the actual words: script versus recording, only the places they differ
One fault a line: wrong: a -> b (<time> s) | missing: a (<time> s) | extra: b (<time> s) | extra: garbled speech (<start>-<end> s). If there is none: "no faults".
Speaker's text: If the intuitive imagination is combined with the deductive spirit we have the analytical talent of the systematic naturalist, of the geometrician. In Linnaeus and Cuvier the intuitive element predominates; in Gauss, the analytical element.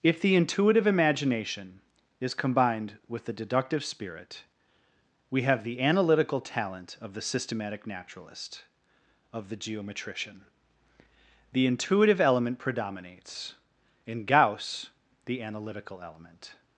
missing: In Linnaeus and Cuvier (10.4 s)